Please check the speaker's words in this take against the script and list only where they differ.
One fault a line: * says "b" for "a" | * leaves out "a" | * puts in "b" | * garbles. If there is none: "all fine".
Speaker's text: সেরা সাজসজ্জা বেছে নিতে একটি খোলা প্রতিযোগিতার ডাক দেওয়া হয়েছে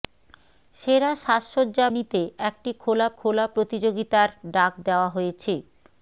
* leaves out "বেছে"
* puts in "খোলা"